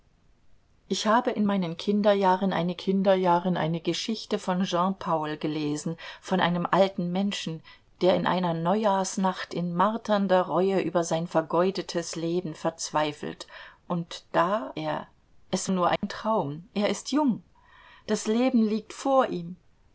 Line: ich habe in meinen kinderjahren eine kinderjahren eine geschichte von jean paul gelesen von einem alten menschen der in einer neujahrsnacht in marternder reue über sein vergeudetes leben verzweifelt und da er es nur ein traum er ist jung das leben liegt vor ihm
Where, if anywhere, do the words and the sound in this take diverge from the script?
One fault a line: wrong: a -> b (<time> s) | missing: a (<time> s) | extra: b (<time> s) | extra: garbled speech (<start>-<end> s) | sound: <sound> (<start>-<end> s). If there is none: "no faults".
sound: dropout (16.0-16.0 s)